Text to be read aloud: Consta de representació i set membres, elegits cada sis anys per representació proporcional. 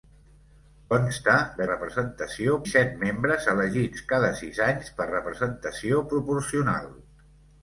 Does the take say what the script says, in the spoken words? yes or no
yes